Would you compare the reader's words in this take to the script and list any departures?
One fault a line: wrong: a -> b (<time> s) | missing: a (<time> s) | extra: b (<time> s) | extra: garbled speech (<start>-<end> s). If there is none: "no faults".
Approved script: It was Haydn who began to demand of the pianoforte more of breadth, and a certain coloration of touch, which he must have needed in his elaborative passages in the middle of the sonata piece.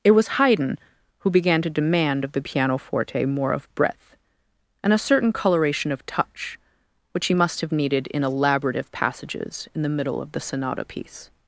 missing: his (8.2 s)